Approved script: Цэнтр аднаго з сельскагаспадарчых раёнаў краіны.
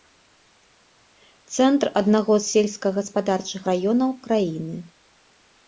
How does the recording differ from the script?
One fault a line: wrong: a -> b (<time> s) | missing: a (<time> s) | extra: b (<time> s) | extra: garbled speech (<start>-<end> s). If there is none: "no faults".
no faults